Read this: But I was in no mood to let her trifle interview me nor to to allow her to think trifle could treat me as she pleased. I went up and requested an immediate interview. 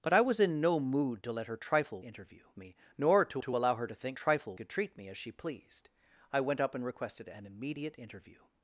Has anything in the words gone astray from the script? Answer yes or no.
no